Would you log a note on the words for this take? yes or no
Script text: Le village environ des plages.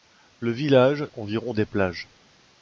no